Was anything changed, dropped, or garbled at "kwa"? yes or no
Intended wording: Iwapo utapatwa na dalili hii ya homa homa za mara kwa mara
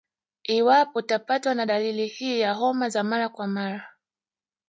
no